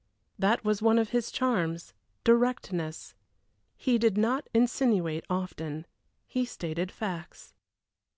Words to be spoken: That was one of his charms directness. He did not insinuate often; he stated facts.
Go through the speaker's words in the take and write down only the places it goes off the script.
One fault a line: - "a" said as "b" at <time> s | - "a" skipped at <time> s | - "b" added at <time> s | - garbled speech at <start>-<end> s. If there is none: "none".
none